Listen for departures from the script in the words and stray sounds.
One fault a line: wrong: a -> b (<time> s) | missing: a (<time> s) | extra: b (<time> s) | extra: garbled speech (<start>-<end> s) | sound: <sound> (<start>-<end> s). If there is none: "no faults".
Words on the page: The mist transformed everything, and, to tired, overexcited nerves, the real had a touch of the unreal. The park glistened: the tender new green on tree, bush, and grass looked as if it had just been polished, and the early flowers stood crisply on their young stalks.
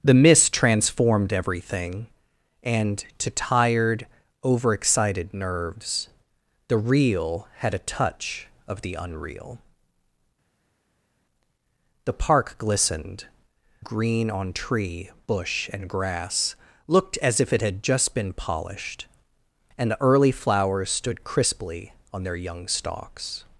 missing: the tender new (13.3 s)